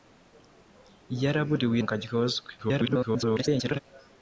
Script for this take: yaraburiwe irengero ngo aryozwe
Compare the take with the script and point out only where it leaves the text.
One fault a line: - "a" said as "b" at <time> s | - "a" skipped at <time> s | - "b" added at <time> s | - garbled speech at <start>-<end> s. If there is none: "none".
- "irengero" skipped at 1.8 s
- garbled speech at 2.6-3.8 s